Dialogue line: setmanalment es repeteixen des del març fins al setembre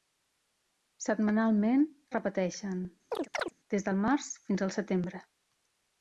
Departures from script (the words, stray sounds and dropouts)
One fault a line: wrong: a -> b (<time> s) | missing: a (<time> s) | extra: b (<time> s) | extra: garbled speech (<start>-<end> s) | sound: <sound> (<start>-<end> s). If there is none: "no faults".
sound: chirp (3.1-3.5 s)